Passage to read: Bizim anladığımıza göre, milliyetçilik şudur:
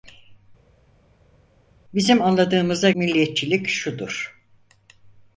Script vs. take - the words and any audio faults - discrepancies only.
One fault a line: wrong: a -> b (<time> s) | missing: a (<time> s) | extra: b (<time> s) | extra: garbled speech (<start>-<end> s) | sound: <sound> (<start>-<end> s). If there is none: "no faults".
missing: göre (2.9 s)